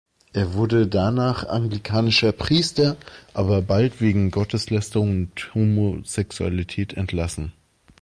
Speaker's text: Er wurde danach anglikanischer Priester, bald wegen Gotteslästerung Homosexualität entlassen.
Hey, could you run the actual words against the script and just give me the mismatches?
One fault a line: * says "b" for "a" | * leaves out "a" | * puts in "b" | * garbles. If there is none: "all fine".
* puts in "aber"
* puts in "und"